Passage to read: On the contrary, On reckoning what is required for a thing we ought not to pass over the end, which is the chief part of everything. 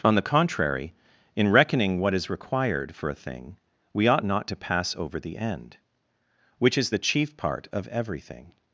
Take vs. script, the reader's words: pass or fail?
fail